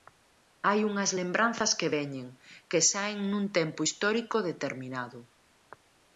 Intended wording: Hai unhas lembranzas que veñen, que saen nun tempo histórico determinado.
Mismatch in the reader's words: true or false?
false